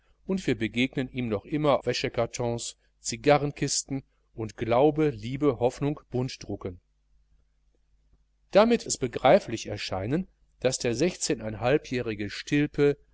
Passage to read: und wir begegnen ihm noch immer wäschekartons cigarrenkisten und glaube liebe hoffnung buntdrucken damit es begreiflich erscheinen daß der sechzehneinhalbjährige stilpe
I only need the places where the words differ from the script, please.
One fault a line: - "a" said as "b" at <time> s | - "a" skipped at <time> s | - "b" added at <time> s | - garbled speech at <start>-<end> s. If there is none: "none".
none